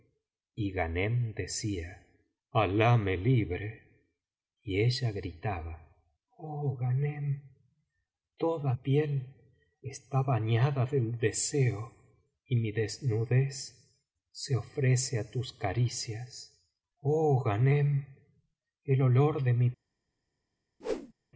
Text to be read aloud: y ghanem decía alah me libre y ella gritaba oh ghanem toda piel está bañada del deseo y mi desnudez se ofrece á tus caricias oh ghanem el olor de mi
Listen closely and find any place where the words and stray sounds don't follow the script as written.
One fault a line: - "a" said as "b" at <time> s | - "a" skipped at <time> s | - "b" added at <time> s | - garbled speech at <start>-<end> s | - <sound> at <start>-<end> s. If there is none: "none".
- whoosh at 20.8-21.1 s